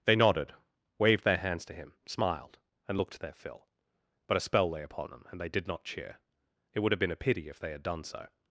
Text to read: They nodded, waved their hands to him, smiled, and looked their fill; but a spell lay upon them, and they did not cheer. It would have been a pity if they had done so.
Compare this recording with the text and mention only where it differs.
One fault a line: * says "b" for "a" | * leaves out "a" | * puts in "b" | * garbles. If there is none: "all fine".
all fine